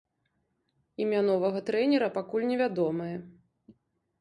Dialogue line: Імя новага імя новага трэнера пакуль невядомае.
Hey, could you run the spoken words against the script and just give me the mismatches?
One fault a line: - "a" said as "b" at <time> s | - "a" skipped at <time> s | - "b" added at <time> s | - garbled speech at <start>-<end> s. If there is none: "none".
- "імя новага" skipped at 1.6 s